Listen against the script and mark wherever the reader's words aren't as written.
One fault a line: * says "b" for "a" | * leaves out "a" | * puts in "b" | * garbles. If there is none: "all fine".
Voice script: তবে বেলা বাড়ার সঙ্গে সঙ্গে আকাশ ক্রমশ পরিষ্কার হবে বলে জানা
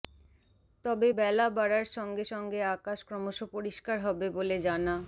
all fine